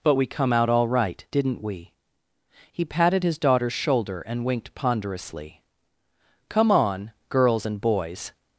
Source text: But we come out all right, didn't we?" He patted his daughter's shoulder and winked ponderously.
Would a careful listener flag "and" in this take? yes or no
no